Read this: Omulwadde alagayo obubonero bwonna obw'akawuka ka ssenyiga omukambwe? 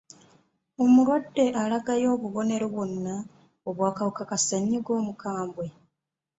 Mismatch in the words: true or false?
false